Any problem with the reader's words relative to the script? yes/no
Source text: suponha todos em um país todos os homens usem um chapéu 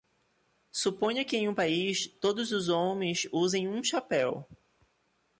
yes